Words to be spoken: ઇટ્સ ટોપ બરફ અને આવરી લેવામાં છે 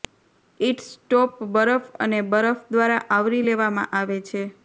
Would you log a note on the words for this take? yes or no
yes